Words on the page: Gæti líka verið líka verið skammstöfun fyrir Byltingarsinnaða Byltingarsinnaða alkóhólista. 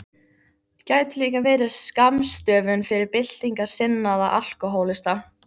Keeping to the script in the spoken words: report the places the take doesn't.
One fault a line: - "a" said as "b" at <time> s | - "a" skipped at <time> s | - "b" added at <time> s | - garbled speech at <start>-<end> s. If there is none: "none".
- "líka verið" skipped at 1.7 s
- "Byltingarsinnaða" skipped at 4.3 s